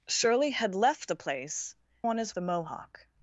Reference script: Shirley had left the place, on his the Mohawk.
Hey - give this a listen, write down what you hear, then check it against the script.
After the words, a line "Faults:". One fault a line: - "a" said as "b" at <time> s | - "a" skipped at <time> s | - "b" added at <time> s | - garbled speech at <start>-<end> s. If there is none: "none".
Shirley had left the place, on his the Mohawk.
Faults:
none